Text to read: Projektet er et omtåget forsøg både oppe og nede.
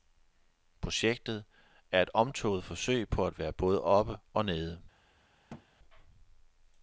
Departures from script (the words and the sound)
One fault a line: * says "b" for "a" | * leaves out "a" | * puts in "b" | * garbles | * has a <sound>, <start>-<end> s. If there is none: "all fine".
* puts in "på at være"
* has a thud, 5.5-5.7 s